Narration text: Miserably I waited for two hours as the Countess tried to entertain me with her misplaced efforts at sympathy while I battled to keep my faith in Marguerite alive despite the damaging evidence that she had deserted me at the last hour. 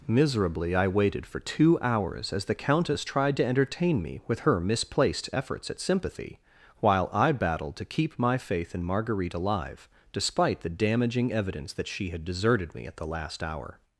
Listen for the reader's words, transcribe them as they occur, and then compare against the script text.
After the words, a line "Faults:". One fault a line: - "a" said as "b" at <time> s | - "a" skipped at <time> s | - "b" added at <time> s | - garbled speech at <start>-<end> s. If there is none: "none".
Miserably I waited for two hours as the Countess tried to entertain me with her misplaced efforts at sympathy while I battled to keep my faith in Marguerite alive despite the damaging evidence that she had deserted me at the last hour.
Faults:
none